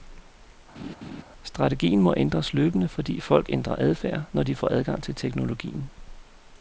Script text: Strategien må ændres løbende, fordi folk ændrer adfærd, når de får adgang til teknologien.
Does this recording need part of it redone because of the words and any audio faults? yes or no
yes